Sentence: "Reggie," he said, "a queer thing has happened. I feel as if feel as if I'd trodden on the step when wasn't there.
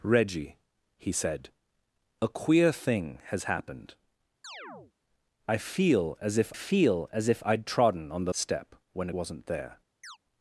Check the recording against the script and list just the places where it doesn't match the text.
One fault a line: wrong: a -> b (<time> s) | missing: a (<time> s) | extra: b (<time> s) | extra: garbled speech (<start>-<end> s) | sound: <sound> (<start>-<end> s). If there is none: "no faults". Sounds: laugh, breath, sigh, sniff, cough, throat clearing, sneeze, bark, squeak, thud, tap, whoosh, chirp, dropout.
sound: chirp (4.4-4.9 s)
sound: chirp (10.0-10.2 s)